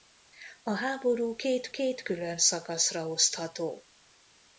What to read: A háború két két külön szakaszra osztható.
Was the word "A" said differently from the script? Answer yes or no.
no